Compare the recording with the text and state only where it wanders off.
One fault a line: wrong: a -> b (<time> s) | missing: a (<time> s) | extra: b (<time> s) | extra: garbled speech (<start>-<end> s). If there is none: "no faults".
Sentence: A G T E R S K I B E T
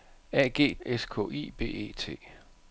missing: T E R (0.7 s)